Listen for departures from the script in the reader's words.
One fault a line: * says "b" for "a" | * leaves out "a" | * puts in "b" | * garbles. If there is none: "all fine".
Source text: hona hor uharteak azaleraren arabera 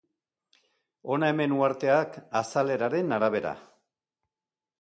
* says "hemen" for "hor"